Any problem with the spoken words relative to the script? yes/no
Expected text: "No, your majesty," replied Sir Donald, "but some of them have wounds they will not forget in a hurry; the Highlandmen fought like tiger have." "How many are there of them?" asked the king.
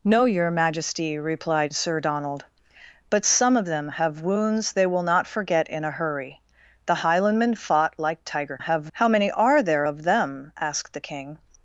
no